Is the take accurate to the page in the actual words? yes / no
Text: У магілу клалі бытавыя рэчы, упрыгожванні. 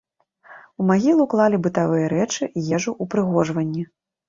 no